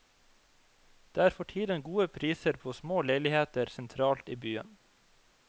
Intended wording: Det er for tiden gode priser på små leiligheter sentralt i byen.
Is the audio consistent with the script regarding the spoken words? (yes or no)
yes